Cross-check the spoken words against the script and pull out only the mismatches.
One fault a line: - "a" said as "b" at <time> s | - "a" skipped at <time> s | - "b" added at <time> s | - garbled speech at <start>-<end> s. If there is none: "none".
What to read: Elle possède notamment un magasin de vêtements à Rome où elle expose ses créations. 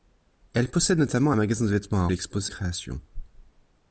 - "Rome où" skipped at 2.1 s
- "ses" skipped at 2.5 s